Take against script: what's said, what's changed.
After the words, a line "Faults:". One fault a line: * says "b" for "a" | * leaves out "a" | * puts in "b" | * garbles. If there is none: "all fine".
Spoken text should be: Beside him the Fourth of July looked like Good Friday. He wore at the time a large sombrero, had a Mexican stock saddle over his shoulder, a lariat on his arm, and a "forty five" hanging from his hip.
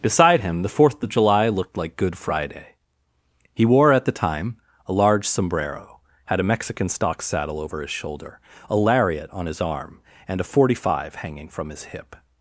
Beside him the Fourth of July looked like Good Friday. He wore at the time a large sombrero, had a Mexican stock saddle over his shoulder, a lariat on his arm, and a "forty five" hanging from his hip.
Faults:
all fine